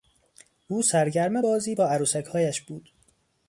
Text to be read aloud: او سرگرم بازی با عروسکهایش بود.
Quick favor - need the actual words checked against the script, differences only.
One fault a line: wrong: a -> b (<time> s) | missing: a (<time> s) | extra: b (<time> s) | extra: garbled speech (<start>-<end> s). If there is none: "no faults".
no faults